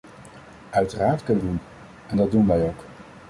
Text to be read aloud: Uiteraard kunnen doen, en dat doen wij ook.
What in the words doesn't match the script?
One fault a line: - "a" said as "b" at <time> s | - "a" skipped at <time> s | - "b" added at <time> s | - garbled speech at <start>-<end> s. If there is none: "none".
none